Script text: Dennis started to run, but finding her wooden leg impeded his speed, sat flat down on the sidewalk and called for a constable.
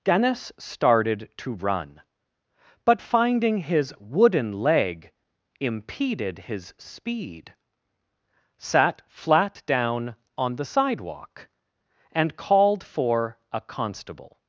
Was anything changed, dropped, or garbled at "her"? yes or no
yes